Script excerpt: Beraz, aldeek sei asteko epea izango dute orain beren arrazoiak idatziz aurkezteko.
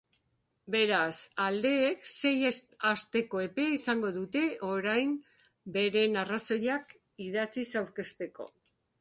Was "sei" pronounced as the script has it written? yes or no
yes